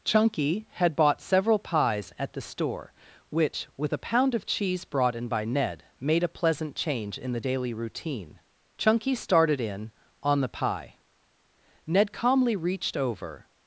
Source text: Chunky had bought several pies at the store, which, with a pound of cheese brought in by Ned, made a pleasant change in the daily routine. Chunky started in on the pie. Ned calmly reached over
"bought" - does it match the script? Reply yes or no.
yes